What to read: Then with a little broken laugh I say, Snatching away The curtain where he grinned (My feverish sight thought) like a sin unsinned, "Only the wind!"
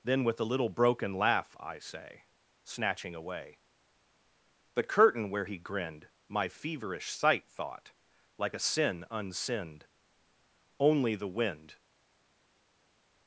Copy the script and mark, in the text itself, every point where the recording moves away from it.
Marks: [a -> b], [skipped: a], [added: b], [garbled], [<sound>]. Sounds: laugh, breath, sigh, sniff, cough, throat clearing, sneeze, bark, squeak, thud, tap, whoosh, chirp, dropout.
Then with a little broken laugh I say, Snatching away The curtain where he grinned (My feverish sight thought) like a sin unsinned, "Only the wind!"